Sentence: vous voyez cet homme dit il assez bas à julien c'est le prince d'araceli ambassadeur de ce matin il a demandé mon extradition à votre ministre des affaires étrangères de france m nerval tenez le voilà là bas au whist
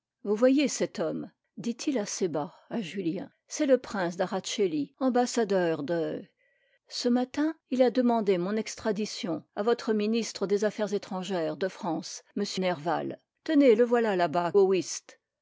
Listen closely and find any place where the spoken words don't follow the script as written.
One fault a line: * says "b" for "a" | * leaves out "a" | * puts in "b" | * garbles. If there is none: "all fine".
all fine